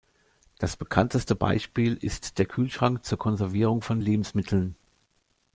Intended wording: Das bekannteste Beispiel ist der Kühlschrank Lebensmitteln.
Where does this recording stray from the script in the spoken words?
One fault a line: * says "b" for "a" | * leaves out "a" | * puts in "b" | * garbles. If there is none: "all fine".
* puts in "zur Konservierung von"